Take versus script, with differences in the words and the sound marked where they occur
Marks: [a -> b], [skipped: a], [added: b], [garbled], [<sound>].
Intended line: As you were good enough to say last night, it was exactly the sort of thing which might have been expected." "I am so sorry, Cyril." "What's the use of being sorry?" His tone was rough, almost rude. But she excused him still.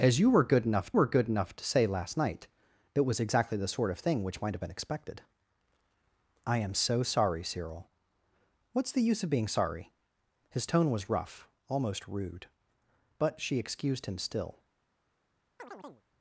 As you were good enough [added: were good enough] to say last night, it was exactly the sort of thing which might have been expected." "I am so sorry, Cyril." "What's the use of being sorry?" His tone was rough, almost rude. But she excused him still. [chirp]